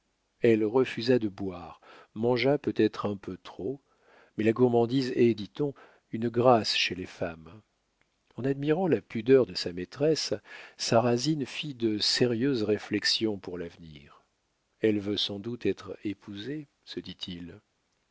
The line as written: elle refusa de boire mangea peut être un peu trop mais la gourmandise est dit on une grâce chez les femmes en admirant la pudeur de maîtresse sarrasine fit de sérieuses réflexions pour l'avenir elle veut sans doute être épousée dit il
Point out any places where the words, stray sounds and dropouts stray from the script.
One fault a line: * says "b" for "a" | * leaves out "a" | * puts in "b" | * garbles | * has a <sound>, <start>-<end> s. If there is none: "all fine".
* puts in "sa"
* puts in "se"